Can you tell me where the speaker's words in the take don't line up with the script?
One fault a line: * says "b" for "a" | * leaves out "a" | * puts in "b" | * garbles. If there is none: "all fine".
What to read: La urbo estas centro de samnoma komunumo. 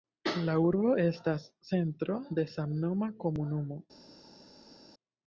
all fine